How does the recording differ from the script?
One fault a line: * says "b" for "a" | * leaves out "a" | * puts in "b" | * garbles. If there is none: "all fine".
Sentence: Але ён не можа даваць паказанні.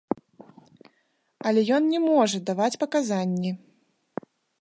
all fine